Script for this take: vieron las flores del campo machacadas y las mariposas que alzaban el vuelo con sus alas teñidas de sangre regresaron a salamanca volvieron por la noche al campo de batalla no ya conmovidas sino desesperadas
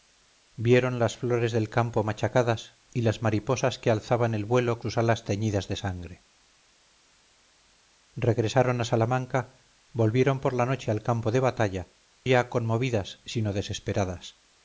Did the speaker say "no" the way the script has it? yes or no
no